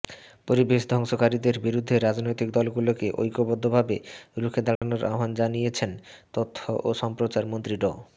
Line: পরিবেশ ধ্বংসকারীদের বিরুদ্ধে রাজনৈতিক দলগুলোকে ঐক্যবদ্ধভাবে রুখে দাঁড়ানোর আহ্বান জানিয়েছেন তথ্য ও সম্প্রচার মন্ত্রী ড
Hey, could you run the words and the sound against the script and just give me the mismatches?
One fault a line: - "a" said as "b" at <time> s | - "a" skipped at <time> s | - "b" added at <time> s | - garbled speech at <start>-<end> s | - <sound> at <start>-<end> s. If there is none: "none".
- dropout at 4.8-4.8 s